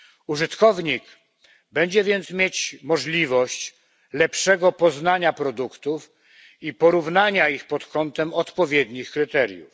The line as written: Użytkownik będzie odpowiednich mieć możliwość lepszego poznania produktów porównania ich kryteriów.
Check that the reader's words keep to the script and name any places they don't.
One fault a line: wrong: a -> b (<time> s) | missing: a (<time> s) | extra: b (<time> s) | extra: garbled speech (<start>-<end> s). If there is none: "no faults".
wrong: odpowiednich -> więc (2.0 s)
extra: i (6.6 s)
extra: pod kątem odpowiednich (7.7 s)